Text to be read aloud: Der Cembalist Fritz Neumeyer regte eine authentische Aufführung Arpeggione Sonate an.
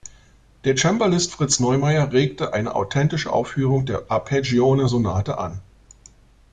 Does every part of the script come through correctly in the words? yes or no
no